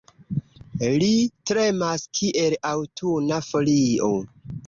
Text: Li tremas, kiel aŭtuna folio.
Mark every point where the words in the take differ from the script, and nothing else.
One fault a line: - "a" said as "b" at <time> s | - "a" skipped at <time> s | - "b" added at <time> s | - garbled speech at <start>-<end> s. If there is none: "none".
none